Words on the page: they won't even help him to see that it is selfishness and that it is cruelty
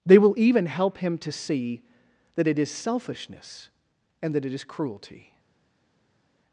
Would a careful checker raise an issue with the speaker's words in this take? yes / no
yes